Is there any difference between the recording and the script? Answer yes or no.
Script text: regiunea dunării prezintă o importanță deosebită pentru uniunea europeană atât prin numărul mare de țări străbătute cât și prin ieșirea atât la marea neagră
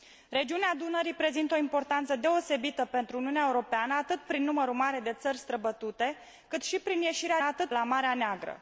no